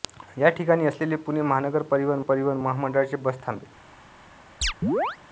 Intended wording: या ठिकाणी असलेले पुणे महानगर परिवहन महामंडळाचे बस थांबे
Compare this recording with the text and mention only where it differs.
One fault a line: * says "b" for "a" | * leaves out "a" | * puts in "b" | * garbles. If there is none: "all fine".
* puts in "परिवहन"